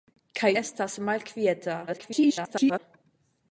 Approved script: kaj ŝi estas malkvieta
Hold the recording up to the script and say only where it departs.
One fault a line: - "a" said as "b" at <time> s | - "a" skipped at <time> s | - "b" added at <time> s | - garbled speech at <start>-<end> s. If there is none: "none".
- "ŝi" skipped at 0.5 s
- garbled speech at 1.9-2.8 s